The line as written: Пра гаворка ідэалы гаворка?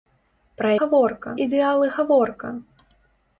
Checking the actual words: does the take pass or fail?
pass